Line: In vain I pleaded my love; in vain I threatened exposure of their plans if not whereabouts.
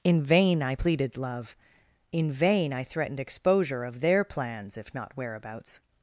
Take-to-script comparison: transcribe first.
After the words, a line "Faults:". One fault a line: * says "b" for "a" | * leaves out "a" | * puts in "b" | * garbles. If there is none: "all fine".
In vain I pleaded love; in vain I threatened exposure of their plans if not whereabouts.
Faults:
* leaves out "my"